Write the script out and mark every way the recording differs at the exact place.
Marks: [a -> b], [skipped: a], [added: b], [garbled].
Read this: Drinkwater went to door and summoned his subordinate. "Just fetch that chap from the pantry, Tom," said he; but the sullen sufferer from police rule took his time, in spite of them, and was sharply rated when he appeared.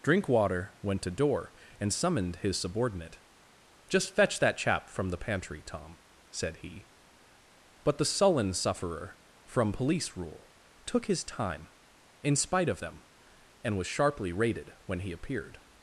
Drinkwater went to door and summoned his subordinate. "Just fetch that chap from the pantry, Tom," said he; but the sullen sufferer from police rule took his time, in spite of them, and was sharply rated when he appeared.